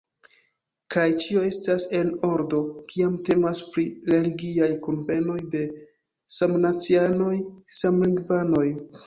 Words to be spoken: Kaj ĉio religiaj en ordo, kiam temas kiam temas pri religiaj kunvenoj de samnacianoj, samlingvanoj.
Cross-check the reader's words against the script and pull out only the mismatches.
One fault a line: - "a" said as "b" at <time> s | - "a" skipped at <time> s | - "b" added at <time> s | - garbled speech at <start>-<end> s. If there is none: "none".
- "religiaj" said as "estas" at 1.5 s
- "kiam temas" skipped at 3.6 s